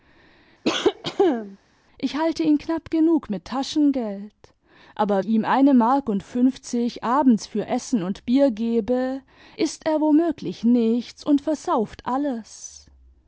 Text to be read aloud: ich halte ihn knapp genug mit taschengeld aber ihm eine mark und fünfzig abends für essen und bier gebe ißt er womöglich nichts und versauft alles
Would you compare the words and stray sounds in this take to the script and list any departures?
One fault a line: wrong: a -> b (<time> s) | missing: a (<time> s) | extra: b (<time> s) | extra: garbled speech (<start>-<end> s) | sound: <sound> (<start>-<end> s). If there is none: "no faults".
sound: cough (0.6-1.6 s)